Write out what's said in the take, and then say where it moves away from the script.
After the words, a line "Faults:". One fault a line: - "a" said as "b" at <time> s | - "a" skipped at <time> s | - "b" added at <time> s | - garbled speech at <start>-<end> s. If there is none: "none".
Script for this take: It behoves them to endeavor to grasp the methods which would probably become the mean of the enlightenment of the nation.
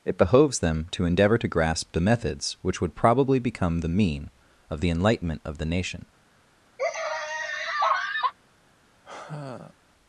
It behoves them to endeavor to grasp the methods which would probably become the mean of the enlightenment of the nation.
Faults:
none